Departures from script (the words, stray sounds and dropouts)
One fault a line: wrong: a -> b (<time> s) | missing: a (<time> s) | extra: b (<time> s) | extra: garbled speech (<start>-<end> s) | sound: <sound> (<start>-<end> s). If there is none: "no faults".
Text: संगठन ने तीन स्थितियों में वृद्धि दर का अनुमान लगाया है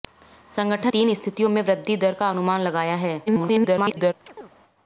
missing: ने (0.9 s)
extra: garbled speech (3.3-4.1 s)
sound: chirp (4.3-4.5 s)